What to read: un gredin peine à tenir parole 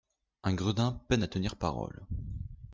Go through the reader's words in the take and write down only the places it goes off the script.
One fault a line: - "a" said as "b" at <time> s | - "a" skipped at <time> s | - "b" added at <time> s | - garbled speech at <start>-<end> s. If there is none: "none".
none